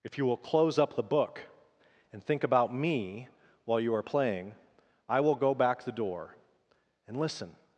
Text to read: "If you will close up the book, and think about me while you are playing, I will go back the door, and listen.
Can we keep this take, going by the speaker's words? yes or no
yes